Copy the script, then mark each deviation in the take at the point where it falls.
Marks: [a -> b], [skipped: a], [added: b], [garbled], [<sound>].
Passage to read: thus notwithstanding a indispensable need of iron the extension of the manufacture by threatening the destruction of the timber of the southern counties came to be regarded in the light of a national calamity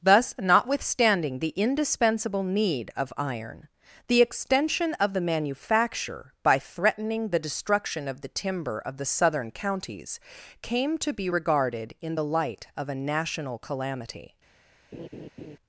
thus notwithstanding [a -> the] indispensable need of iron the extension of the manufacture by threatening the destruction of the timber of the southern counties came to be regarded in the light of a national calamity [laugh]